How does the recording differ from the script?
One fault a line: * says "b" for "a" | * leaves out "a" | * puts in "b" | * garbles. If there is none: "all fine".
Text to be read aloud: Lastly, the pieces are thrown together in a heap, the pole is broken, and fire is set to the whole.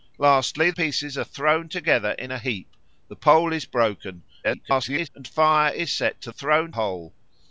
* leaves out "the"
* garbles
* says "thrown" for "the"